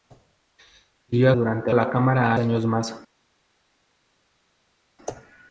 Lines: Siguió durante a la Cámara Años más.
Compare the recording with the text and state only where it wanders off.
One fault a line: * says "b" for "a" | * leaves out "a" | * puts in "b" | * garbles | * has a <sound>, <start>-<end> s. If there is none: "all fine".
all fine